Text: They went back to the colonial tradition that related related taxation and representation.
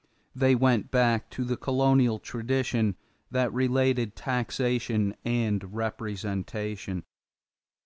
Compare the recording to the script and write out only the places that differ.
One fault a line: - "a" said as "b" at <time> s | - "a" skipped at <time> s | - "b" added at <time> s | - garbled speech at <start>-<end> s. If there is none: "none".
- "related" skipped at 4.2 s